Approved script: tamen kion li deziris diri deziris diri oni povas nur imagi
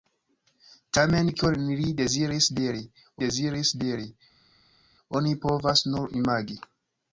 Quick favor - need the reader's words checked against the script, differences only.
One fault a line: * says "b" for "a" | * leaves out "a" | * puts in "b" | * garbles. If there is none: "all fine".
all fine